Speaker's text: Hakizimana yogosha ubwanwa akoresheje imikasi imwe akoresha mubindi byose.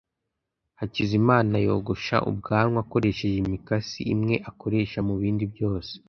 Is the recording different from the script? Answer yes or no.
no